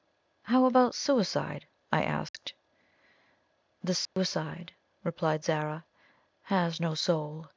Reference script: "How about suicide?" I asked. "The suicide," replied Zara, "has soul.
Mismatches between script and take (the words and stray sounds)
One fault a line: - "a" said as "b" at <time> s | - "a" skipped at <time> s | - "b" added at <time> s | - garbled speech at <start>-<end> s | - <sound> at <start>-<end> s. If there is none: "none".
- dropout at 2.3-2.3 s
- dropout at 4.1-4.2 s
- "no" added at 6.8 s